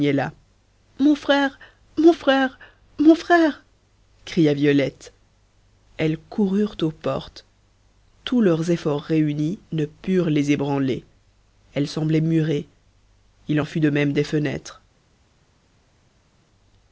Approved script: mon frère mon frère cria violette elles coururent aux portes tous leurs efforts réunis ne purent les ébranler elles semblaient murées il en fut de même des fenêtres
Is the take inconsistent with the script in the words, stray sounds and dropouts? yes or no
yes